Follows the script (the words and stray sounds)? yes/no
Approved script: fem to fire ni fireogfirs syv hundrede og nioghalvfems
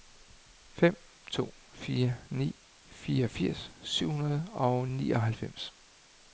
yes